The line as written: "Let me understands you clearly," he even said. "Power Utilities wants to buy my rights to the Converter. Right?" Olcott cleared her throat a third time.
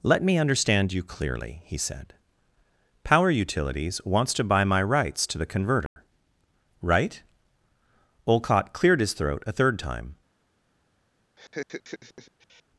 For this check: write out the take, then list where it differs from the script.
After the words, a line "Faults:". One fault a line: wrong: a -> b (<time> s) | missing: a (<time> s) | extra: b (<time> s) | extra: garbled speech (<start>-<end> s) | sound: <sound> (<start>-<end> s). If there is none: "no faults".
"Let me understand you clearly," he said. "Power Utilities wants to buy my rights to the Converter. Right?" Olcott cleared his throat a third time.
Faults:
wrong: understands -> understand (0.4 s)
missing: even (1.8 s)
sound: dropout (5.9-6.0 s)
wrong: her -> his (9.0 s)
sound: laugh (11.4-12.6 s)